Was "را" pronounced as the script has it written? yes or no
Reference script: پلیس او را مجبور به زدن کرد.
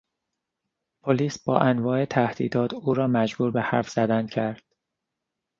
yes